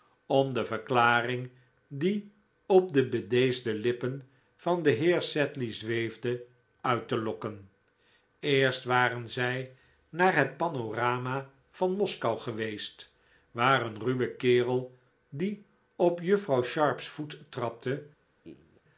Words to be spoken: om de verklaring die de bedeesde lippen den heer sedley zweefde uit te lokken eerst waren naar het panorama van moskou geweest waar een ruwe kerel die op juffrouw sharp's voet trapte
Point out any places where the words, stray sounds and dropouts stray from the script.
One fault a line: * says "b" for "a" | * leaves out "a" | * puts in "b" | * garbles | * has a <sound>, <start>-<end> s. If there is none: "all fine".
* puts in "op"
* puts in "van"
* puts in "zij"
* has a laugh, 18.4-18.8 s